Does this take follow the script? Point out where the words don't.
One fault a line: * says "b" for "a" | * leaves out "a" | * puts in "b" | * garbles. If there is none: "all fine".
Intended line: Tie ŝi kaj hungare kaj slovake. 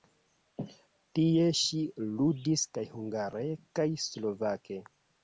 * puts in "ludis"